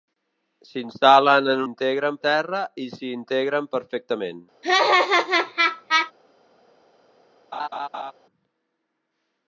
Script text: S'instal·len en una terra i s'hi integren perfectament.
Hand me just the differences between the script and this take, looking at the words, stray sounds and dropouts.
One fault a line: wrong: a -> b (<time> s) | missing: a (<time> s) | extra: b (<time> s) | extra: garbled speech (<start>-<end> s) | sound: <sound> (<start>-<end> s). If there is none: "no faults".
wrong: una -> integren (1.7 s)
sound: laugh (4.6-6.1 s)
sound: laugh (7.5-8.1 s)